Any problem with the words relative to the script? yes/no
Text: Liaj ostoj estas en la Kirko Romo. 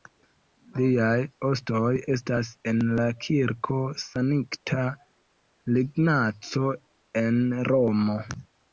yes